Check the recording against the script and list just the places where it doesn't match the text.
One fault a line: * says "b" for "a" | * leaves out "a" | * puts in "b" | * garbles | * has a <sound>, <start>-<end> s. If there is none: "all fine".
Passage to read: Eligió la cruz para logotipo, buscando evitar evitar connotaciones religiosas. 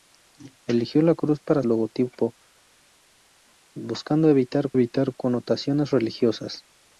all fine